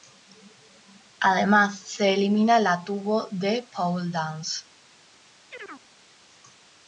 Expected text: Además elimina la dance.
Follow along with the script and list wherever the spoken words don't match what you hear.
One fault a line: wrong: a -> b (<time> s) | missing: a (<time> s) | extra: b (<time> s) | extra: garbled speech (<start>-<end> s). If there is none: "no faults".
extra: se (1.8 s)
extra: tubo de pole (2.8 s)